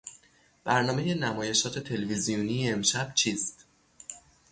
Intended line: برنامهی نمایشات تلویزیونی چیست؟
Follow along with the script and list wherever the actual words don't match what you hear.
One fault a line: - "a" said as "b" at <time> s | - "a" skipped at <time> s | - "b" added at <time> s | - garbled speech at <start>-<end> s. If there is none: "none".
- "امشب" added at 2.7 s